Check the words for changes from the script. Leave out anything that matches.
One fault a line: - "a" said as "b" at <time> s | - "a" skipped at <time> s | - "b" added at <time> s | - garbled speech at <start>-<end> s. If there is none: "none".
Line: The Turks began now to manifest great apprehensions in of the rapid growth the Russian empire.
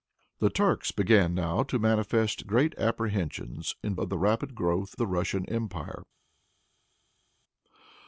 none